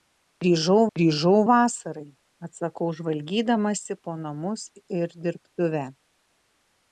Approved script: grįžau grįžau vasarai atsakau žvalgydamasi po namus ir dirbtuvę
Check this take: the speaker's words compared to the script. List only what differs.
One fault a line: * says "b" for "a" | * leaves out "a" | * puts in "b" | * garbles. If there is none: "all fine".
all fine